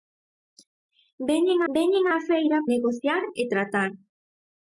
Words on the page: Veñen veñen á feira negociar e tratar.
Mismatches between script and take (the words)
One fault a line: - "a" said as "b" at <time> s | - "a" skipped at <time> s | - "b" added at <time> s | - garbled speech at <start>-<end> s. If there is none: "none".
none